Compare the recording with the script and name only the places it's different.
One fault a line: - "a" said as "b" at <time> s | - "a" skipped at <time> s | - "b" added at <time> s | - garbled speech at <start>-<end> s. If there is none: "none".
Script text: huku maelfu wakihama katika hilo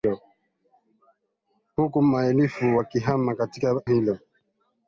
none